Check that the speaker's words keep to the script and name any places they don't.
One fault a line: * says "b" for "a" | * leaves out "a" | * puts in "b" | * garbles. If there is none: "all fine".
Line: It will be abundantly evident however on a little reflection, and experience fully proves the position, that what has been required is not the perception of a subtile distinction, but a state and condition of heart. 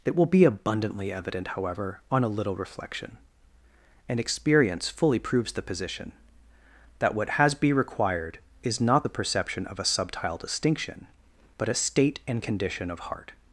* says "be" for "been"